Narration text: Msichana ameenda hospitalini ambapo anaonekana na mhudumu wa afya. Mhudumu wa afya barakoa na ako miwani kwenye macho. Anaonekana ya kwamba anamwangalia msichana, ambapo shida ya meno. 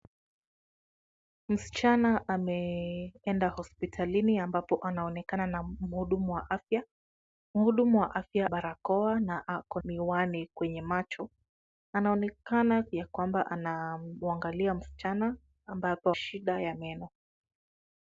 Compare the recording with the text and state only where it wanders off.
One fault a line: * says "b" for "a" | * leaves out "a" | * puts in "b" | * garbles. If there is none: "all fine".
all fine